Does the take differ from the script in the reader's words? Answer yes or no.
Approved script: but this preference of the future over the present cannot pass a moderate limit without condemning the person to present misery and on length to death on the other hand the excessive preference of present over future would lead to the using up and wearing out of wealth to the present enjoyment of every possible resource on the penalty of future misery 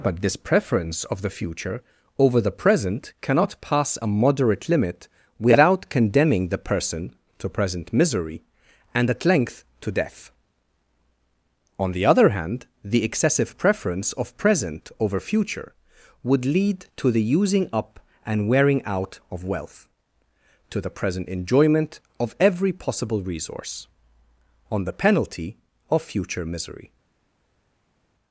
yes